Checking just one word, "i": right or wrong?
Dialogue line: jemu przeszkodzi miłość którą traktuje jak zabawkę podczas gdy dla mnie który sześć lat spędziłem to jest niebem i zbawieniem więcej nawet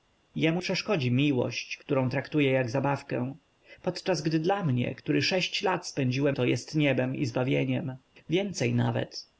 right